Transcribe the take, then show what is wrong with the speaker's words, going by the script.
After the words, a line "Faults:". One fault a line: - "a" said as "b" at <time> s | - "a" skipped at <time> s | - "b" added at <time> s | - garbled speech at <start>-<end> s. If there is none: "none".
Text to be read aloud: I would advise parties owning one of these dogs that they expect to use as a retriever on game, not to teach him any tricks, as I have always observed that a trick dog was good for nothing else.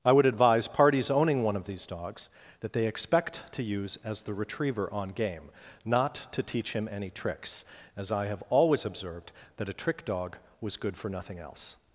I would advise parties owning one of these dogs that they expect to use as the retriever on game, not to teach him any tricks, as I have always observed that a trick dog was good for nothing else.
Faults:
- "a" said as "the" at 4.2 s